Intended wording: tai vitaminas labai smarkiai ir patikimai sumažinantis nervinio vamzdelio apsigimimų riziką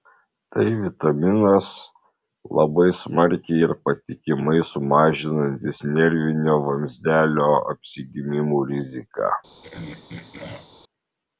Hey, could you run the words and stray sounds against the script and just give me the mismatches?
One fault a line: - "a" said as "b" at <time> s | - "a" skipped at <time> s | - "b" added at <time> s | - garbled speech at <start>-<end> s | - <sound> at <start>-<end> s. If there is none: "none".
- throat clearing at 9.6-10.8 s